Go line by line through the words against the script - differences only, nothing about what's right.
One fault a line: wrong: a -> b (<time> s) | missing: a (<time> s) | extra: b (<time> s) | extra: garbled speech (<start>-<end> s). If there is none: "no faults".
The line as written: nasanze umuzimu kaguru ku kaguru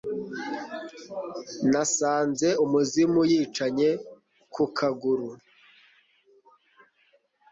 wrong: kaguru -> yicanye (3.3 s)